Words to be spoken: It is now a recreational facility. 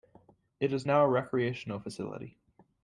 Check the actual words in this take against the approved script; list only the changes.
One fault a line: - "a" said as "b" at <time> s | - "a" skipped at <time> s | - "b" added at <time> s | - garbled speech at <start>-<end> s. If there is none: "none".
none